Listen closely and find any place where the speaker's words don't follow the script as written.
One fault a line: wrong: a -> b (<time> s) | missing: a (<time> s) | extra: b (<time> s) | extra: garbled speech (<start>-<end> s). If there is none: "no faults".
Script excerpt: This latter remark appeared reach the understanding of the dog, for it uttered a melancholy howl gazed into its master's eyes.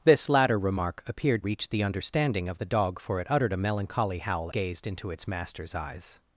no faults